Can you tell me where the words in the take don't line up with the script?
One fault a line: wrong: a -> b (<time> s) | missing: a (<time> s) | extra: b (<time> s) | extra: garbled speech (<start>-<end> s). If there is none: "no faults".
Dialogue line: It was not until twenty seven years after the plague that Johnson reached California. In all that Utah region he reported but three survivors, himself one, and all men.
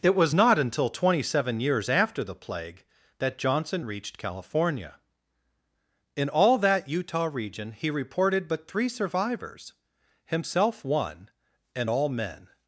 no faults